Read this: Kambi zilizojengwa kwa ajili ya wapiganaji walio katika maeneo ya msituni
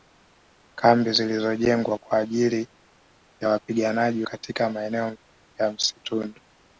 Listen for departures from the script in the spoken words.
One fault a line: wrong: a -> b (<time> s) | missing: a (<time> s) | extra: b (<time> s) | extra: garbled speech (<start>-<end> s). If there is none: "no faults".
missing: walio (4.2 s)